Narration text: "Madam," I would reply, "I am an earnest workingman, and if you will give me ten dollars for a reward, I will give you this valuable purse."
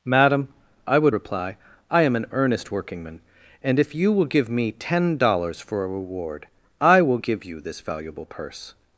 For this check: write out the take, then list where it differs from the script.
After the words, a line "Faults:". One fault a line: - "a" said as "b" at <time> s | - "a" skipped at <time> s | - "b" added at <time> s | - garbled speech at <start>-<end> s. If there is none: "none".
"Madam," I would reply, "I am an earnest workingman, and if you will give me ten dollars for a reward, I will give you this valuable purse."
Faults:
none